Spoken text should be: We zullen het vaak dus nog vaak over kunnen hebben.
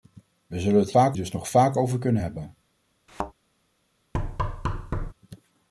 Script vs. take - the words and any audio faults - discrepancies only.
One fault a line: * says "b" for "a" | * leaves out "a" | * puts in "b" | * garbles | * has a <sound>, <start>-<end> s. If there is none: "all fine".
* has a thud, 3.1-3.3 s
* has a thud, 4.1-5.1 s